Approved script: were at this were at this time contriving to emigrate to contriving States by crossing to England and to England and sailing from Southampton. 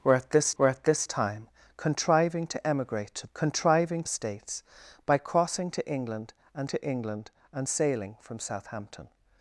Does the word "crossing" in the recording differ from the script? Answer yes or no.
no